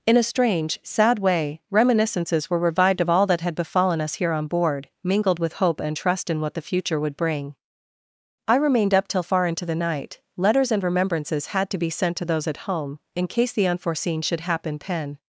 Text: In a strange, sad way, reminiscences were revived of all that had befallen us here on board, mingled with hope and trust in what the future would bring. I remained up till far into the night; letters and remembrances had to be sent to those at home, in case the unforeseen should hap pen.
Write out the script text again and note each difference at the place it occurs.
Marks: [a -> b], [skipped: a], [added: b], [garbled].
In a strange, sad way, reminiscences were revived of all that had befallen us here on board, mingled with hope and trust in what the future would bring. I remained up till far into the night; letters and remembrances had to be sent to those at home, in case the unforeseen should [hap -> happen] pen.